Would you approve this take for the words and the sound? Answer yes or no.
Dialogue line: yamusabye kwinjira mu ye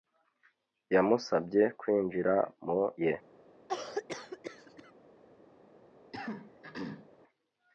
no